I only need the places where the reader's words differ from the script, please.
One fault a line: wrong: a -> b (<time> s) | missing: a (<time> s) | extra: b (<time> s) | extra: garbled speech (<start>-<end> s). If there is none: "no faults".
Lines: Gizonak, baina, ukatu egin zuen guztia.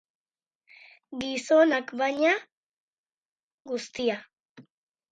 missing: ukatu egin zuen (2.3 s)